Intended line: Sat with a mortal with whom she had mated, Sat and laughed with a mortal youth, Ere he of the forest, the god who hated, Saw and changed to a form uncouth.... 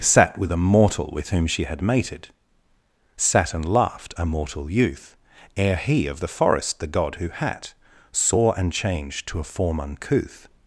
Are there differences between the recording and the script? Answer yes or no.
yes